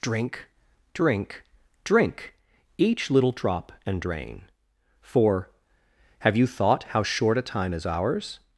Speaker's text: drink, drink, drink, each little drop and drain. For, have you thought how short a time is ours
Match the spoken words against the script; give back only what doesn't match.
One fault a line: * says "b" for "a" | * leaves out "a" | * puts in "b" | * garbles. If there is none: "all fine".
all fine